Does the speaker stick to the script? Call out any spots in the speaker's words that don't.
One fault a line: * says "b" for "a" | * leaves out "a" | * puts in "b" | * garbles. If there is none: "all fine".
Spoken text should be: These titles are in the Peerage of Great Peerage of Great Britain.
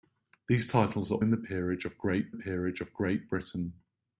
all fine